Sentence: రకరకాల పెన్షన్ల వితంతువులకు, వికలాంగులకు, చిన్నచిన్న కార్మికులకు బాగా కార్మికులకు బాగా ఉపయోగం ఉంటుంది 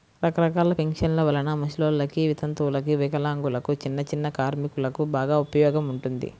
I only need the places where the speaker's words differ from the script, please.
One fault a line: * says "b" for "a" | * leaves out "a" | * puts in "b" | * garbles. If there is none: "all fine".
* puts in "వలన ముసలోల్లకి"
* leaves out "కార్మికులకు బాగా"